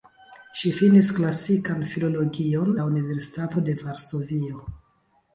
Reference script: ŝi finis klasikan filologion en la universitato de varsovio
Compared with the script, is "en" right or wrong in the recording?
wrong